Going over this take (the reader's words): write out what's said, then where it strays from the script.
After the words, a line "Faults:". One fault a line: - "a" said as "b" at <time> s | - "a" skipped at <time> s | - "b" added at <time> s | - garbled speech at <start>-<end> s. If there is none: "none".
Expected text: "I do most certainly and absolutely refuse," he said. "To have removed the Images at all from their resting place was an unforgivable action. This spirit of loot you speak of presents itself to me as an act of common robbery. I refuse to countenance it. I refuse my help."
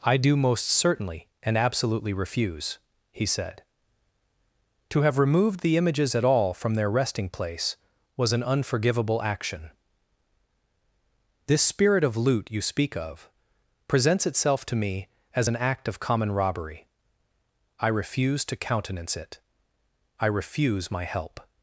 "I do most certainly and absolutely refuse," he said. "To have removed the Images at all from their resting place was an unforgivable action. This spirit of loot you speak of presents itself to me as an act of common robbery. I refuse to countenance it. I refuse my help."
Faults:
none